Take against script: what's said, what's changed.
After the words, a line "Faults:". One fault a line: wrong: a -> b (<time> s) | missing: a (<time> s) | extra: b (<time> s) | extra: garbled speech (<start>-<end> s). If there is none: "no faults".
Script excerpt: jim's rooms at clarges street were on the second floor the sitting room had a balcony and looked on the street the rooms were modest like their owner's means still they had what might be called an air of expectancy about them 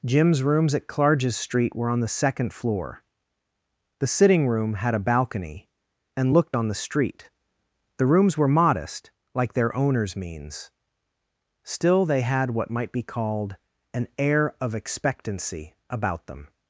jim's rooms at clarges street were on the second floor the sitting room had a balcony and looked on the street the rooms were modest like their owner's means still they had what might be called an air of expectancy about them
Faults:
no faults